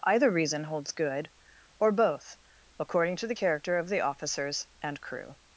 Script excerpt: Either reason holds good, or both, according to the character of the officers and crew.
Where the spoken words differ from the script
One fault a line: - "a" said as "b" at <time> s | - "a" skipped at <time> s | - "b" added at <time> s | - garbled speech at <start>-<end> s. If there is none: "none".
none